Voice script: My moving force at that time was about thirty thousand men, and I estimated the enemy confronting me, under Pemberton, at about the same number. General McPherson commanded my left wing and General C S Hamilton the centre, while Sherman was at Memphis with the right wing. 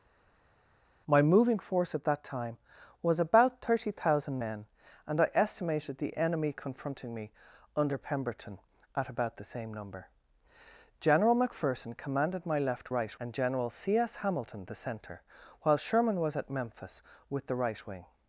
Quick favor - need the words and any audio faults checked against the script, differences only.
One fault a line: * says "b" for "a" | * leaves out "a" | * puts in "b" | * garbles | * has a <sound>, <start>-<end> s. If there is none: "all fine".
* says "right" for "wing"